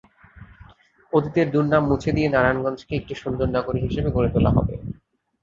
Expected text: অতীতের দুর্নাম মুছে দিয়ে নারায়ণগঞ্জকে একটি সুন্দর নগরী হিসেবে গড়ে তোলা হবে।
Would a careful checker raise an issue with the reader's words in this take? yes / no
no